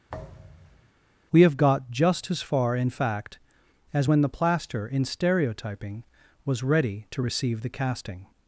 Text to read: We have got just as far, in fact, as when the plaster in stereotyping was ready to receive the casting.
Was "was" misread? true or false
false